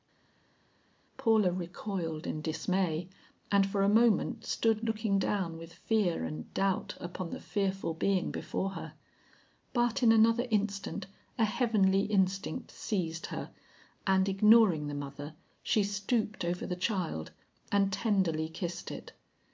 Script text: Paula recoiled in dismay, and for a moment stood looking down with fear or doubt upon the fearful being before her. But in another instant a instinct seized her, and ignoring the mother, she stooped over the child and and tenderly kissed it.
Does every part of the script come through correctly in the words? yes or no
no